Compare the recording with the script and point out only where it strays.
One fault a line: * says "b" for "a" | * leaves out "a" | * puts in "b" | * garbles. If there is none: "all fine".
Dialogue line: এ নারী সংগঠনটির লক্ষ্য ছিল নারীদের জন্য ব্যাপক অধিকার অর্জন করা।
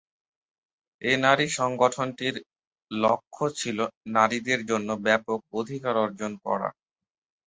all fine